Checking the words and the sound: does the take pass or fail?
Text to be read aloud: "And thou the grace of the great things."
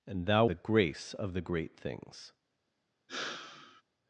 fail